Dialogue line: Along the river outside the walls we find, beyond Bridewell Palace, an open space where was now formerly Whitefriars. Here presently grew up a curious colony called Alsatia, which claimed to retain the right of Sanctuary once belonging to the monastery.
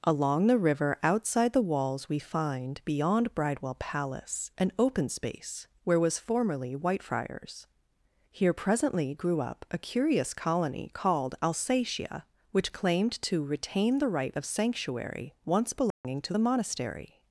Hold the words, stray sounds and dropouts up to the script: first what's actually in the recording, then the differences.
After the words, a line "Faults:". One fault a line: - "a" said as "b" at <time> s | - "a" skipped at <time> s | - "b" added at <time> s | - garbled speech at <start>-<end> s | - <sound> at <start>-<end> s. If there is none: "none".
Along the river outside the walls we find, beyond Bridewell Palace, an open space where was formerly Whitefriars. Here presently grew up a curious colony called Alsatia, which claimed to retain the right of Sanctuary once belonging to the monastery.
Faults:
- "now" skipped at 6.2 s
- dropout at 15.9-16.0 s